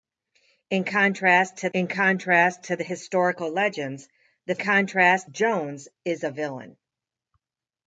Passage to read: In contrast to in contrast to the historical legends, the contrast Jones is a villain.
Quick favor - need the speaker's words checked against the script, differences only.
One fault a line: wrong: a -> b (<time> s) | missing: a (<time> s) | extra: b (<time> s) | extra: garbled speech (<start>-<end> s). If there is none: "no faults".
no faults